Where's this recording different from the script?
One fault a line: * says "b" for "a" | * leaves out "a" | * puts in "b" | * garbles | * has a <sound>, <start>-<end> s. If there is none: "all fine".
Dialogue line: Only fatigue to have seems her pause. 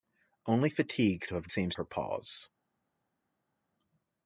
all fine